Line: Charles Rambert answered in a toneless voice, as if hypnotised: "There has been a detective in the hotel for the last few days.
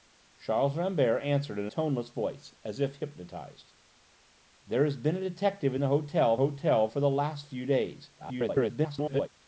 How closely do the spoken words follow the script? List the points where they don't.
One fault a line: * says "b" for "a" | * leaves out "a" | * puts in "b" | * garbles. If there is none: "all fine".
* leaves out "a"
* puts in "hotel"
* garbles